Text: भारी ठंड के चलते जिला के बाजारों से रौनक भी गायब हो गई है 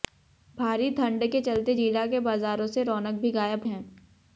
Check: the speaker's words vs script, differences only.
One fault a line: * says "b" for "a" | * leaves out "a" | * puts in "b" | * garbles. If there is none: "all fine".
* leaves out "हो गई"